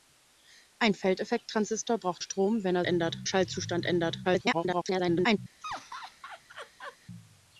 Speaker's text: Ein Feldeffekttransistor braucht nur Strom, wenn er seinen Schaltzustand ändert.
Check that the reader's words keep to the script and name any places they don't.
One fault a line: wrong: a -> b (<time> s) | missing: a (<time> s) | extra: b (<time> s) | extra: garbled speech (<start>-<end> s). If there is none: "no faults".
missing: nur (2.2 s)
wrong: seinen -> ändert (2.8 s)
extra: garbled speech (4.2-5.4 s)